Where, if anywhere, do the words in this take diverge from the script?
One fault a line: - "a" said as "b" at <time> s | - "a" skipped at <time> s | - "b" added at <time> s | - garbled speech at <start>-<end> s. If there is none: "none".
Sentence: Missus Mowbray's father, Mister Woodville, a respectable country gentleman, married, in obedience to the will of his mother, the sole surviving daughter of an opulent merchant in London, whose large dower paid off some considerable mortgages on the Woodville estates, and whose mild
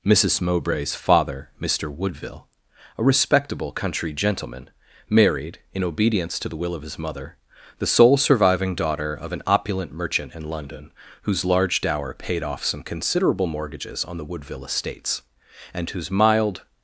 none